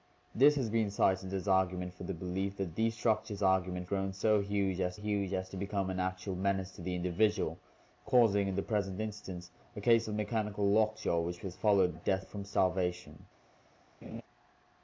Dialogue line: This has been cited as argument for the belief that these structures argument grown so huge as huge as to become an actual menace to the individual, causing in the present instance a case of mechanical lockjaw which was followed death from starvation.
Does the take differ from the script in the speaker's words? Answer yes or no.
no